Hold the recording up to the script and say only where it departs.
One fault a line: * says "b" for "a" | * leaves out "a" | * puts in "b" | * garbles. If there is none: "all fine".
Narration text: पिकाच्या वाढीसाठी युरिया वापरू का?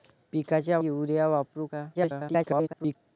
* leaves out "वाढीसाठी"
* garbles